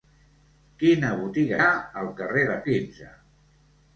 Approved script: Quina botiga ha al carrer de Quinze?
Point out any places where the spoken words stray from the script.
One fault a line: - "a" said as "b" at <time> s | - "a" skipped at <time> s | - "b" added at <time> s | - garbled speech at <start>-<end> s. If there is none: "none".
none